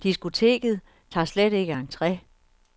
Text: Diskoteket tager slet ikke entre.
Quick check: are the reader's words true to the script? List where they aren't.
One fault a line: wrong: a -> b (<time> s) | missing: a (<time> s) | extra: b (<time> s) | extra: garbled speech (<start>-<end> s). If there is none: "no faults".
no faults